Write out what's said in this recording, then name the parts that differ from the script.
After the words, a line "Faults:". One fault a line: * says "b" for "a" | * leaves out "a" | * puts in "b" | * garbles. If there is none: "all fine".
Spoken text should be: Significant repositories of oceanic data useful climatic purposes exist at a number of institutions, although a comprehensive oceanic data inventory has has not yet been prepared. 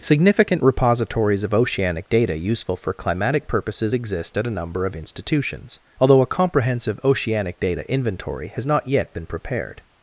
Significant repositories of oceanic data useful for climatic purposes exist at a number of institutions, although a comprehensive oceanic data inventory has not yet been prepared.
Faults:
* puts in "for"
* leaves out "has"